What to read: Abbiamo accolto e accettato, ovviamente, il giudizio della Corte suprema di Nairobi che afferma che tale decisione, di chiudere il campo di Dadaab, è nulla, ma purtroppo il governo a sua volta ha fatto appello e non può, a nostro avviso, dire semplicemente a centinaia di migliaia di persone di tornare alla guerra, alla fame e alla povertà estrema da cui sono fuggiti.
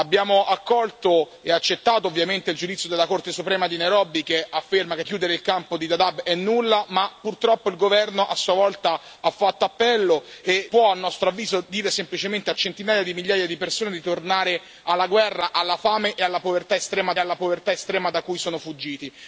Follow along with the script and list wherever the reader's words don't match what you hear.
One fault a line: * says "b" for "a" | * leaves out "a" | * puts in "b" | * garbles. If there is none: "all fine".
* leaves out "tale decisione di"
* leaves out "non"
* puts in "alla povertà estrema"